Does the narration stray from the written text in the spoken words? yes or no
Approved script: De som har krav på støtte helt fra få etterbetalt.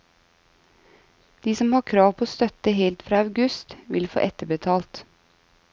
yes